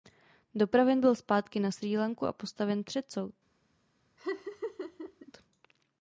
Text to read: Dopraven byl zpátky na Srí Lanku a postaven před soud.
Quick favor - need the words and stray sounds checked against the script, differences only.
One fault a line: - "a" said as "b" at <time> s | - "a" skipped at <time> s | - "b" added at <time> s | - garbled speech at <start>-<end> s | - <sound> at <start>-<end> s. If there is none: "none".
- laugh at 4.2-5.3 s